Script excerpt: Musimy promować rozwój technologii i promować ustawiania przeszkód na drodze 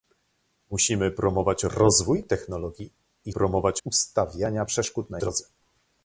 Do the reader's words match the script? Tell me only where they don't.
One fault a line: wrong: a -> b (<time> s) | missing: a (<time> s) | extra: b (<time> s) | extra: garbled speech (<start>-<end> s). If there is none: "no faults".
no faults